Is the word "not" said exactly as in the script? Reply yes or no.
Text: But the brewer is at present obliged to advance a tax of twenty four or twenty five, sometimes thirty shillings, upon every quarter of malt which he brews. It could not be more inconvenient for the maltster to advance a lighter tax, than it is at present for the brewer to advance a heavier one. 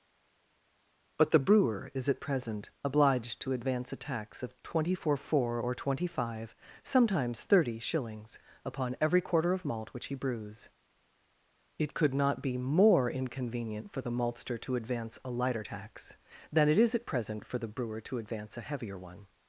yes